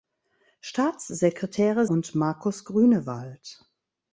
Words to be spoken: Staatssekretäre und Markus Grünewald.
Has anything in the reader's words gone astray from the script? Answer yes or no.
no